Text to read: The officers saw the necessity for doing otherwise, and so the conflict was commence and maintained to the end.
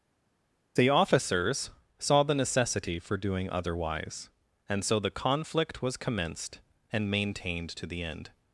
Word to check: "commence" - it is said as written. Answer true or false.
false